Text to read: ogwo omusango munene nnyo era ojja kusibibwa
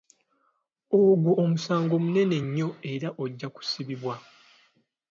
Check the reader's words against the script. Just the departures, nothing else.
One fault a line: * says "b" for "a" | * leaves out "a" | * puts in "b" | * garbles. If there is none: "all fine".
all fine